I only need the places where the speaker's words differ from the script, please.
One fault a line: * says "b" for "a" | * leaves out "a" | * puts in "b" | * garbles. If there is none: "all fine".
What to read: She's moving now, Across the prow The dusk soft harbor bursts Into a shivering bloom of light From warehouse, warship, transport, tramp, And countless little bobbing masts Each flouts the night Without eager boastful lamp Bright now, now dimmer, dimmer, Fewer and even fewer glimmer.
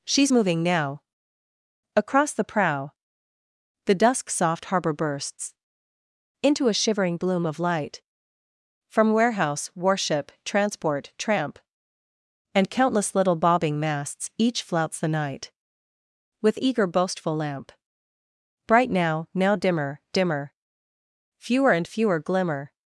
* says "With" for "Without"
* leaves out "even"